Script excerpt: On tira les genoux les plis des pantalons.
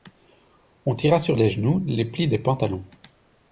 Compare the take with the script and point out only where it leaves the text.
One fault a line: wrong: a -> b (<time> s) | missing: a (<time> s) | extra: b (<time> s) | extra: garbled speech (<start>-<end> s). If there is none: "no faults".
extra: sur (1.2 s)